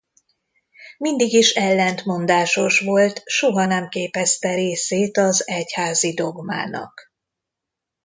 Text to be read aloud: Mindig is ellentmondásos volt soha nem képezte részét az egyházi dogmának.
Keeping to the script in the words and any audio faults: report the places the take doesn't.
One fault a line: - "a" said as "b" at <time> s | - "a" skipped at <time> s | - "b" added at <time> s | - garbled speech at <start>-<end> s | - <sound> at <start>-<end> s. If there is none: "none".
none